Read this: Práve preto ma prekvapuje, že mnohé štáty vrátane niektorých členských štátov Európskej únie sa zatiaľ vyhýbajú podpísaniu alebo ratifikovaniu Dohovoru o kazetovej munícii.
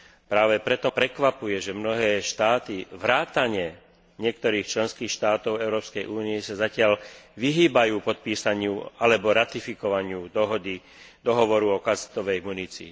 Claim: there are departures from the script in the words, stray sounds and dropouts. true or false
true